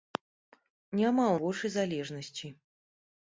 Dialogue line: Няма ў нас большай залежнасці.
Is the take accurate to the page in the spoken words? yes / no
no